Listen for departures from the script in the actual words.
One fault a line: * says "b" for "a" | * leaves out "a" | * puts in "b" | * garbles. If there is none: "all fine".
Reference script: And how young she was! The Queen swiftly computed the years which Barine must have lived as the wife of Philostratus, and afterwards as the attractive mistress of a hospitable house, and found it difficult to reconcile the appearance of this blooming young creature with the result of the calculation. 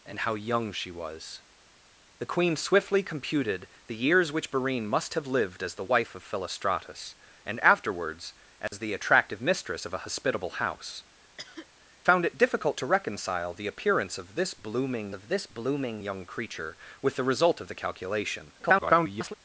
* leaves out "and"
* puts in "of this blooming"
* garbles